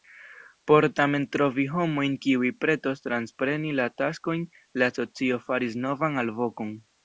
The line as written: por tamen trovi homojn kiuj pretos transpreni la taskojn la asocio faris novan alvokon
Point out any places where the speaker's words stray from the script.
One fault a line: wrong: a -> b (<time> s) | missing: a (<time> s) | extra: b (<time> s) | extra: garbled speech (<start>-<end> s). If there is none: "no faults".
no faults